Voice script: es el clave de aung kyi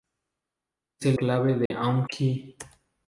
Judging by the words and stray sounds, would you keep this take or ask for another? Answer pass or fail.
fail